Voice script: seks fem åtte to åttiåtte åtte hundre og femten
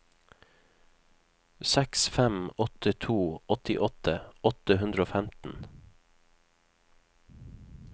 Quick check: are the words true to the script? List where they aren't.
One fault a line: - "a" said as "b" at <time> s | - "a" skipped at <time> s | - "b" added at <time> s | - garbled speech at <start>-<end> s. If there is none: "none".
none